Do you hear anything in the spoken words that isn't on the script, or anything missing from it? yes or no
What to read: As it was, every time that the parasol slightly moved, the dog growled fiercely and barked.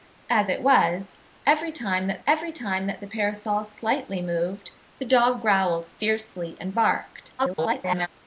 yes